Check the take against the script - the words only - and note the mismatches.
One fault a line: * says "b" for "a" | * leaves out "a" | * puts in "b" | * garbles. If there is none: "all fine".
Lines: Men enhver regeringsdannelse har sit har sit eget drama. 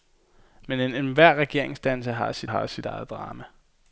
all fine